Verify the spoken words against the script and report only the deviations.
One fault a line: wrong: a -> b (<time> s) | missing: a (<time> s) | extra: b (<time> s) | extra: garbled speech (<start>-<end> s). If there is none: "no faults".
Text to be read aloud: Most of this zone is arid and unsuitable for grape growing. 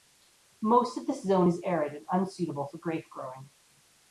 no faults